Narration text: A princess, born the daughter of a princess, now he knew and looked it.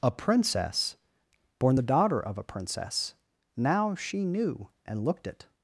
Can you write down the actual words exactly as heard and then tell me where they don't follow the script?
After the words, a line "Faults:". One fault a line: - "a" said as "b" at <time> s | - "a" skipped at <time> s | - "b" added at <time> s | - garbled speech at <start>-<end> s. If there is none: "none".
A princess, born the daughter of a princess, now she knew and looked it.
Faults:
- "he" said as "she" at 3.9 s